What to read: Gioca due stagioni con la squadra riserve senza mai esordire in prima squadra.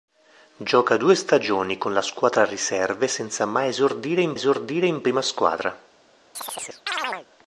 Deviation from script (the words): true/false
true